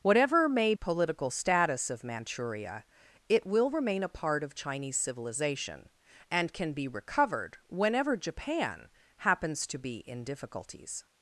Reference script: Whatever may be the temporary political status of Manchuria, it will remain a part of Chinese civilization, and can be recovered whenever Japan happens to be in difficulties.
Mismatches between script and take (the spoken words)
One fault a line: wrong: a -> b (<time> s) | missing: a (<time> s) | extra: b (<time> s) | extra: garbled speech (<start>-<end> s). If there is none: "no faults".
missing: be the temporary (0.7 s)